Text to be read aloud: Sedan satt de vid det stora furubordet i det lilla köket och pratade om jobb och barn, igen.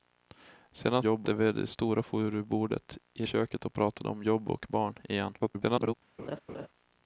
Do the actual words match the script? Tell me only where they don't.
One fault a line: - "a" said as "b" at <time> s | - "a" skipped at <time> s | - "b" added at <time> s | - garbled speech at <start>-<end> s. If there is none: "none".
- "satt" said as "jobb" at 1.0 s
- "det lilla" skipped at 3.3 s
- garbled speech at 5.4-5.9 s